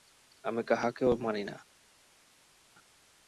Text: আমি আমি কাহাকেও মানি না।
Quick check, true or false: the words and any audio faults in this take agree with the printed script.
false